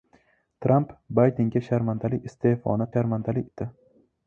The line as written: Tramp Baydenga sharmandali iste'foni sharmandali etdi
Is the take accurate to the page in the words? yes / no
yes